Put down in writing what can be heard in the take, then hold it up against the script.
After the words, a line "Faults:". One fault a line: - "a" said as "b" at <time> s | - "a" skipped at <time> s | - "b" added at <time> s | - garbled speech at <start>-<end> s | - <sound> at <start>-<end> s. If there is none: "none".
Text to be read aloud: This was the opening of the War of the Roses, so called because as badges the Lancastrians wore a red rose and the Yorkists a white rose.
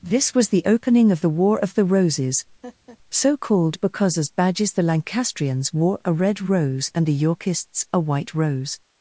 This was the opening of the War of the Roses, so called because as badges the Lancastrians wore a red rose and the Yorkists a white rose.
Faults:
- laugh at 2.6-3.0 s